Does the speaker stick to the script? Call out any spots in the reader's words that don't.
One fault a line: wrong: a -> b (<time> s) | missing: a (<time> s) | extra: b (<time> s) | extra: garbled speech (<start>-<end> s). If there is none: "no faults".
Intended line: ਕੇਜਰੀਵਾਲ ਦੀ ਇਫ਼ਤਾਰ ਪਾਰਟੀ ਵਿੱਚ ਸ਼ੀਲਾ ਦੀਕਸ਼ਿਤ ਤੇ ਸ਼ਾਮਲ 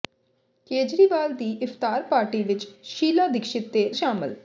no faults